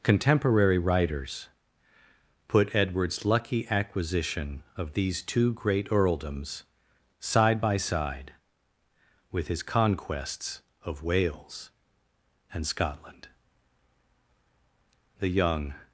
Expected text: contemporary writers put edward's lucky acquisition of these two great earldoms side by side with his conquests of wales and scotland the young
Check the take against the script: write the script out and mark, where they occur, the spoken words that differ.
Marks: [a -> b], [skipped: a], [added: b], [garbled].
contemporary writers put edward's lucky acquisition of these two great earldoms side by side with his conquests of wales and scotland the young